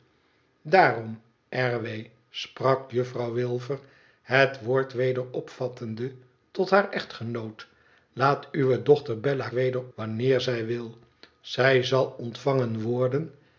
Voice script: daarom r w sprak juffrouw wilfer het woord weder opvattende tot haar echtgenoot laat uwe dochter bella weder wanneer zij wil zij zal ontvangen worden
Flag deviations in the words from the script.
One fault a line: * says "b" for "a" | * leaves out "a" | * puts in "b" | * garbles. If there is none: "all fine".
all fine